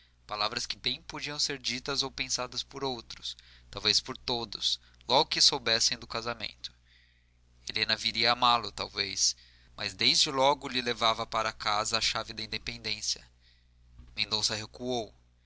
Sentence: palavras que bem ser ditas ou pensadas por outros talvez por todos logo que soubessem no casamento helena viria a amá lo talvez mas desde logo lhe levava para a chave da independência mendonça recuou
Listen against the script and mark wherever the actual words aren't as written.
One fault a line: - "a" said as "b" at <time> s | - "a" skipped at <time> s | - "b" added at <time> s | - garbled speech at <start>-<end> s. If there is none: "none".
- "podiam" added at 1.0 s
- "no" said as "do" at 6.0 s
- "casa" added at 11.5 s